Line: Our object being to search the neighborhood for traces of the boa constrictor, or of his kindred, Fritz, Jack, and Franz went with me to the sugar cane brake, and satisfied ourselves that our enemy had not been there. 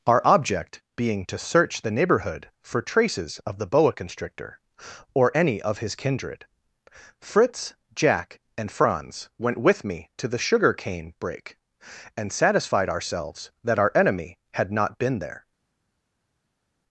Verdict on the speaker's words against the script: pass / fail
fail